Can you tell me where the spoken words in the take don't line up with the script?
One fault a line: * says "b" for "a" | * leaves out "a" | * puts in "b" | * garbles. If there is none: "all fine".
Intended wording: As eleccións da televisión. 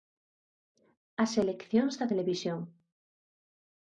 all fine